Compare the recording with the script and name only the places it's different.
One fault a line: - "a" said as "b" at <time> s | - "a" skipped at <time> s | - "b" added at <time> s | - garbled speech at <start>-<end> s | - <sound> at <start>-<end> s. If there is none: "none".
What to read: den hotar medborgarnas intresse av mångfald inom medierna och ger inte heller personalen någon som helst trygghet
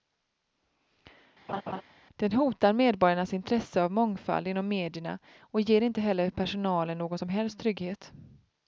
- laugh at 1.5-1.8 s